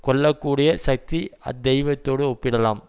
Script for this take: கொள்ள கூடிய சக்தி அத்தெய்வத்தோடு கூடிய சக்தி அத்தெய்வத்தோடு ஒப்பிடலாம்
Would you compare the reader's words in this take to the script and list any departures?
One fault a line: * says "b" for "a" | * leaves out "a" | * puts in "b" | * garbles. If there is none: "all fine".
* leaves out "கூடிய சக்தி அத்தெய்வத்தோடு"